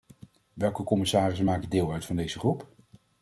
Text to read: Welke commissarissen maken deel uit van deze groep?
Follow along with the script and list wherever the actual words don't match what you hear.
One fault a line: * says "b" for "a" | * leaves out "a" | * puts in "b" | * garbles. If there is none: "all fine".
all fine